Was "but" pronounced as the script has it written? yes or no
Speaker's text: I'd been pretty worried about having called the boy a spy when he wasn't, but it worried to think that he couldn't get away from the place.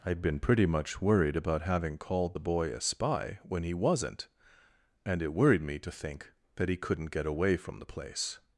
no